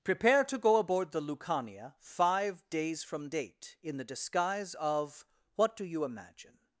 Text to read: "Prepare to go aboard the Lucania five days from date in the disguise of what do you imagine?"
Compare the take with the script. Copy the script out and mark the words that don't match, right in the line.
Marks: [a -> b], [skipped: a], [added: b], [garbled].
"Prepare to go aboard the Lucania five days from date in the disguise of what do you imagine?"